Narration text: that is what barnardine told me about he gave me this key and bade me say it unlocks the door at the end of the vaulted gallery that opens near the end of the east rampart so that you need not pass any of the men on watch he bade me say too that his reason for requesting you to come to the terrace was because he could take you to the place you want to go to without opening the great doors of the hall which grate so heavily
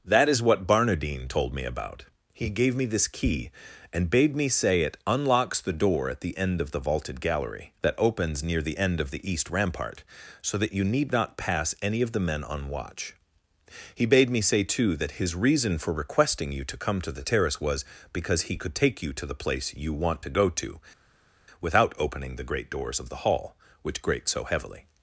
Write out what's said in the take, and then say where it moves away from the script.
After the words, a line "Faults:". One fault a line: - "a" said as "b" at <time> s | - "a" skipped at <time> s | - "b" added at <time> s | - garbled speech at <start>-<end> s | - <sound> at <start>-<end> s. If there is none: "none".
that is what barnardine told me about he gave me this key and bade me say it unlocks the door at the end of the vaulted gallery that opens near the end of the east rampart so that you need not pass any of the men on watch he bade me say too that his reason for requesting you to come to the terrace was because he could take you to the place you want to go to without opening the great doors of the hall which grate so heavily
Faults:
none